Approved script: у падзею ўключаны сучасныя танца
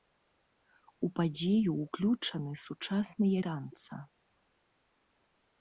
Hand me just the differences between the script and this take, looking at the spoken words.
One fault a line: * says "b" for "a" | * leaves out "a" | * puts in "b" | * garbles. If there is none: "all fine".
all fine